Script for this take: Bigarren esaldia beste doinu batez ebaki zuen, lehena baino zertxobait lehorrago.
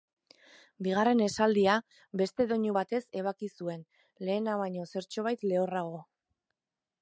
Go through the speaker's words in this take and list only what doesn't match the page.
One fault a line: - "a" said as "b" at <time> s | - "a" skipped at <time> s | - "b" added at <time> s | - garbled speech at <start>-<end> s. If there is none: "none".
none